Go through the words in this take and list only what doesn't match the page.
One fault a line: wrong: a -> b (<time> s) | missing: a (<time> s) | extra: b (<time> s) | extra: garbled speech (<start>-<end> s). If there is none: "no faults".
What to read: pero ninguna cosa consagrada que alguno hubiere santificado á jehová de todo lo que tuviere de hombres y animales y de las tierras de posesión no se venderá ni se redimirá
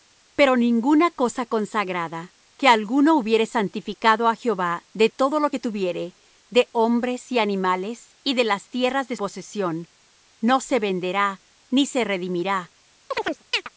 no faults